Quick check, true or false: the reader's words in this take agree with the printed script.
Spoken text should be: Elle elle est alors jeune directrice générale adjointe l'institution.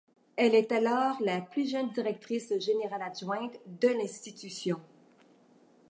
false